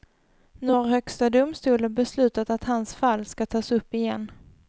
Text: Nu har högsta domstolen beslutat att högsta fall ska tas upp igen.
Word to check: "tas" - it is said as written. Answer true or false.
true